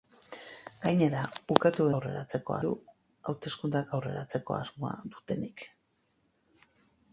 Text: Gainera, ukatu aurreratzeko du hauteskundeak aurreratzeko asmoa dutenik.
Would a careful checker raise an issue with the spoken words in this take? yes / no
no